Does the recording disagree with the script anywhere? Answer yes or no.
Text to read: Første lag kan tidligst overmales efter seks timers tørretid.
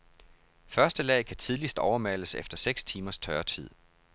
no